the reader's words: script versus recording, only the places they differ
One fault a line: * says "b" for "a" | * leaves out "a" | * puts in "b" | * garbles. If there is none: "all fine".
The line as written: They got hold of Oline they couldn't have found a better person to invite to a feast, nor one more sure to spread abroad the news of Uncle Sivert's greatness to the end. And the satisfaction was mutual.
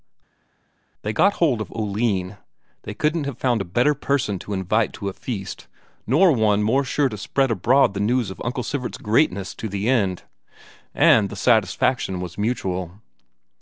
all fine